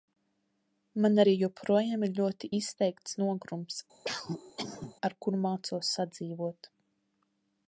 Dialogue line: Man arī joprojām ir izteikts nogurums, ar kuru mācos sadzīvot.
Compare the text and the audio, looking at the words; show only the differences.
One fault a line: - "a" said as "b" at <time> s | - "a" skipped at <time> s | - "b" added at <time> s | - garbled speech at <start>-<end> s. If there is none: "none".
- "ļoti" added at 2.2 s